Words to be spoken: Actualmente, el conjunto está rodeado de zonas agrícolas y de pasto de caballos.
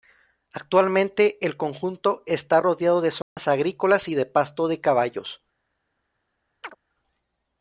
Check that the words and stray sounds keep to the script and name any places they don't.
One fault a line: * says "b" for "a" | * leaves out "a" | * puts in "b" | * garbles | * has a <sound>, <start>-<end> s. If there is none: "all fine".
* has a dropout, 3.2-3.4 s
* has a chirp, 6.6-6.8 s